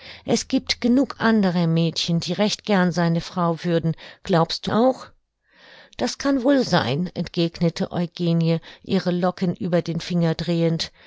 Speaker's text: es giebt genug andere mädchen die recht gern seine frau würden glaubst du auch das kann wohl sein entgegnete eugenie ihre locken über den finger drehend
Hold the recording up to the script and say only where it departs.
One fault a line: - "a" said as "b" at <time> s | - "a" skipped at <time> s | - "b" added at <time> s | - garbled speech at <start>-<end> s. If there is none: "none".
none